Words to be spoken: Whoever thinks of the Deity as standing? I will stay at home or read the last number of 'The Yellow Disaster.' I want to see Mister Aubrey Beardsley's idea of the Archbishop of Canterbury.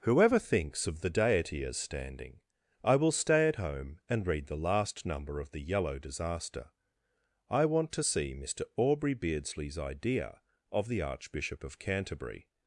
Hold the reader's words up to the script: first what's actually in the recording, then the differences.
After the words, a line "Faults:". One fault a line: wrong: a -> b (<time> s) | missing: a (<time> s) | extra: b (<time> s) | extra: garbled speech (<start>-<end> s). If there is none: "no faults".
Whoever thinks of the Deity as standing? I will stay at home and read the last number of 'The Yellow Disaster.' I want to see Mister Aubrey Beardsley's idea of the Archbishop of Canterbury.
Faults:
wrong: or -> and (4.1 s)